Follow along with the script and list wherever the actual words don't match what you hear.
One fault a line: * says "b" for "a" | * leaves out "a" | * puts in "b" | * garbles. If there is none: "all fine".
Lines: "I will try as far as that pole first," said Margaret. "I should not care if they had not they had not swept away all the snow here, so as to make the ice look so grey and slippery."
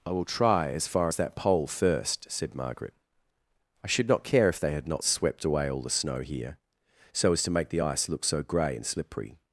* leaves out "they had not"